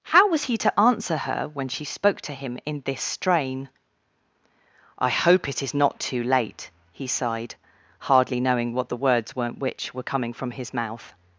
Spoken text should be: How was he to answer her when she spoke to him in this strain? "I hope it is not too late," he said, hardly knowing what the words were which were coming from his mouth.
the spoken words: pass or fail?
fail